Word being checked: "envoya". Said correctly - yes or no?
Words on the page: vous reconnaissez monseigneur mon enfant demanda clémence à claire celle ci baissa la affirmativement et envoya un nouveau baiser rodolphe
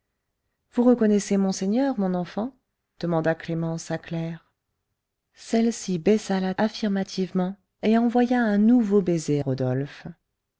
yes